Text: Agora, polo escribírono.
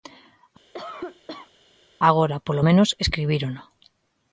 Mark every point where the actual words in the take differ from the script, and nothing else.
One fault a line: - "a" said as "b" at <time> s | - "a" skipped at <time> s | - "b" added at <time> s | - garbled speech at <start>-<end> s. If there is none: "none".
- "menos" added at 2.7 s